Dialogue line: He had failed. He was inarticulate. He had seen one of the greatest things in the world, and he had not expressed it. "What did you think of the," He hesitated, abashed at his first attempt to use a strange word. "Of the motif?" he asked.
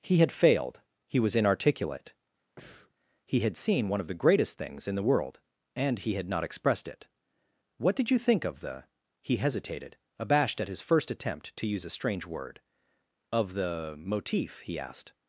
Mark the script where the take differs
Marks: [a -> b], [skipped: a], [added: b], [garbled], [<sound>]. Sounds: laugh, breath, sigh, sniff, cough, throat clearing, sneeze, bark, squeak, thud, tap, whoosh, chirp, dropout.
He had failed. He was inarticulate. [breath] He had seen one of the greatest things in the world, and he had not expressed it. "What did you think of the," He hesitated, abashed at his first attempt to use a strange word. "Of the motif?" he asked.